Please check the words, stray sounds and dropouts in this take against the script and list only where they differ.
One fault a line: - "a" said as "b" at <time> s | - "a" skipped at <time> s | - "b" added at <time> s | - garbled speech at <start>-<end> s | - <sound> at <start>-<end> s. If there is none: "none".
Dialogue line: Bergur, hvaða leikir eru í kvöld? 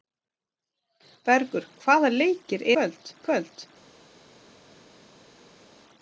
- "eru" said as "kvöld" at 2.8 s